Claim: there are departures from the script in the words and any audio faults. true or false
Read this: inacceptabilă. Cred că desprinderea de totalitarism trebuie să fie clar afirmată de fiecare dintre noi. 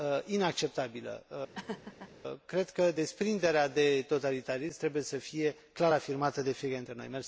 true